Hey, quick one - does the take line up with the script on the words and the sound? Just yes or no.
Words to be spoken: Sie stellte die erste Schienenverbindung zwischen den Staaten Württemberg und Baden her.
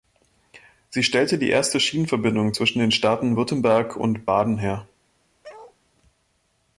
no